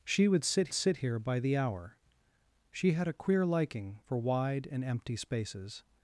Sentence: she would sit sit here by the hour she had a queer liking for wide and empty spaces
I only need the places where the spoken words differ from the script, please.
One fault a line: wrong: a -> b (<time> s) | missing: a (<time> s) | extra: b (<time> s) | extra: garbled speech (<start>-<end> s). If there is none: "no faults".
no faults